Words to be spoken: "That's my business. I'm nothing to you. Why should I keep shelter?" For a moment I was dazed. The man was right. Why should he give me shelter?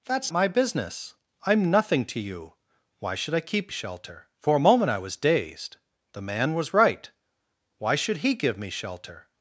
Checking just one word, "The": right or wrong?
right